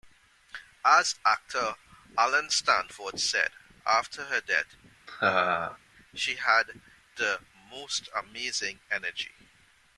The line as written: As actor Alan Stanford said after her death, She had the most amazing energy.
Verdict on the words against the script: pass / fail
pass